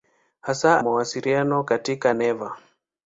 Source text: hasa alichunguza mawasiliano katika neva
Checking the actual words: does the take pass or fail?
fail